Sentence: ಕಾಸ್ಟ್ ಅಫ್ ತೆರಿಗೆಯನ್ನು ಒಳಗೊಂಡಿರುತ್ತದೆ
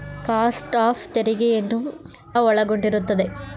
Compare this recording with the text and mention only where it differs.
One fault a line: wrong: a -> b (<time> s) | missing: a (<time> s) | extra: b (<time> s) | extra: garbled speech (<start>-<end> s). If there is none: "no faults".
no faults